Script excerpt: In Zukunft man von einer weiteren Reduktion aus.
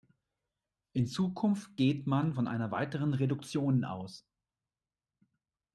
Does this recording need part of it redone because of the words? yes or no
yes